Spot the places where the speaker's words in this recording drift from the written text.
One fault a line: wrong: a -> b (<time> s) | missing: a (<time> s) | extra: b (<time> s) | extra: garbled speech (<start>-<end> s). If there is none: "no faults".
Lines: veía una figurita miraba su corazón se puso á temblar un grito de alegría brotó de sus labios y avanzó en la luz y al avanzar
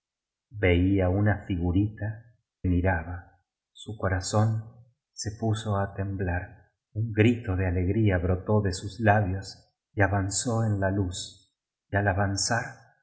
no faults